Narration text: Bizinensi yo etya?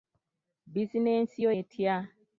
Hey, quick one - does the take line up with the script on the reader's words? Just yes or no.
yes